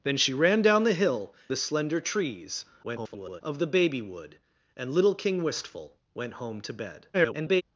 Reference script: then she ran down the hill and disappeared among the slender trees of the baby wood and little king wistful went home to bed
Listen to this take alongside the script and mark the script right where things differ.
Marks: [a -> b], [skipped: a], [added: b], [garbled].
then she ran down the hill [skipped: and disappeared among] the slender trees [garbled] of the baby wood and little king wistful went home to bed [garbled]